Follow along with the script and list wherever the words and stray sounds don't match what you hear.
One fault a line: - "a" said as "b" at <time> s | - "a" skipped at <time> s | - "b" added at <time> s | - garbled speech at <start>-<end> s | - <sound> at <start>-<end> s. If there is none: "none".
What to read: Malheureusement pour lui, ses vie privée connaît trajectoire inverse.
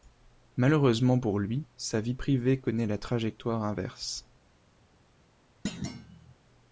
- "ses" said as "sa" at 1.8 s
- "la" added at 2.9 s
- thud at 5.7-6.4 s